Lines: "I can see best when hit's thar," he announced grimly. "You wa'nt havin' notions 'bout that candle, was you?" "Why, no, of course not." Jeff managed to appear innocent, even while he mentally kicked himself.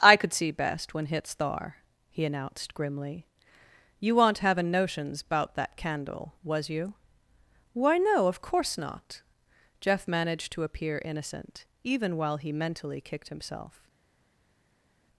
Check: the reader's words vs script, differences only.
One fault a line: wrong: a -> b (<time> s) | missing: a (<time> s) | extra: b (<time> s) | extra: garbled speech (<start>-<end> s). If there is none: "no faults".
wrong: can -> could (0.2 s)